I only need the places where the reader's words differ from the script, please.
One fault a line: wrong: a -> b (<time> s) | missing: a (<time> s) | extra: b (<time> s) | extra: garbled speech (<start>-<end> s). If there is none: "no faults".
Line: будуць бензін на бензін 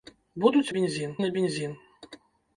no faults